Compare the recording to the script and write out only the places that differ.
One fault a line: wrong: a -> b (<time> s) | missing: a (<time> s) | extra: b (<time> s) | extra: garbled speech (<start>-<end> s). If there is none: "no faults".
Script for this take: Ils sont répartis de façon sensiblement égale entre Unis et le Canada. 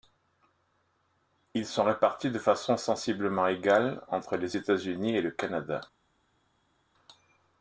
extra: les États (4.3 s)